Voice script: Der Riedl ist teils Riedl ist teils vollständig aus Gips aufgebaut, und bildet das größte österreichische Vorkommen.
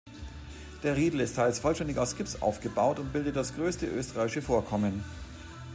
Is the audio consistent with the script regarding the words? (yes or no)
no